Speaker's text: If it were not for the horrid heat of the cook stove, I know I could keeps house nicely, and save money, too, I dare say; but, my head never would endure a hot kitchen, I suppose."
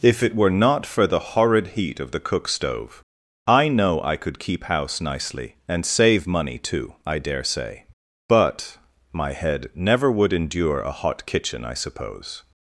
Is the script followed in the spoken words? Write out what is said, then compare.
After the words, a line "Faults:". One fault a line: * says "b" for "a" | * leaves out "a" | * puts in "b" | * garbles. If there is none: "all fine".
If it were not for the horrid heat of the cook stove, I know I could keep house nicely, and save money, too, I dare say; but, my head never would endure a hot kitchen, I suppose."
Faults:
* says "keep" for "keeps"